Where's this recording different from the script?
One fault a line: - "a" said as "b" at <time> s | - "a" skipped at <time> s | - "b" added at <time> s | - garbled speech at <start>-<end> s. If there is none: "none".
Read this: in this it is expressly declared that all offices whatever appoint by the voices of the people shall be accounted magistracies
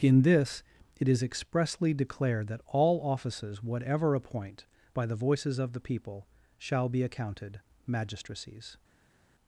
none